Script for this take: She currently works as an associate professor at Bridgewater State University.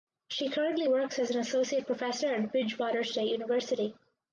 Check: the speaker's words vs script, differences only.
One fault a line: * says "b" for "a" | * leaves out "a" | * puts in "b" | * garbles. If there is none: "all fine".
all fine